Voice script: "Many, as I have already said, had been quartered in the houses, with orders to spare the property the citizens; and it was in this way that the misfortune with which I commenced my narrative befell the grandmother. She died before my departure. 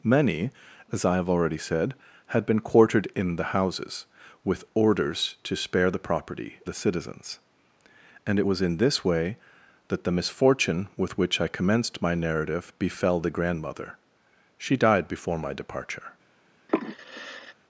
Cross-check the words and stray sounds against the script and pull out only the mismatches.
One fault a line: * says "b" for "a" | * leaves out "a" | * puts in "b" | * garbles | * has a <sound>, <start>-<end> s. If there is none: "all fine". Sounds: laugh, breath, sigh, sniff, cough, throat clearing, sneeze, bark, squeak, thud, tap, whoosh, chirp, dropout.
* has a sigh, 16.7-17.5 s